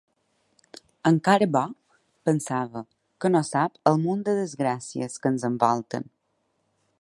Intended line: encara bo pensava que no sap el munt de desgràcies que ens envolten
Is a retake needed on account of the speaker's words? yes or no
no